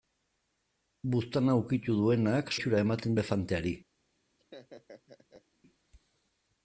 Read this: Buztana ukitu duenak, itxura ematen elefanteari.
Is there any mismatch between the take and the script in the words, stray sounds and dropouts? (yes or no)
yes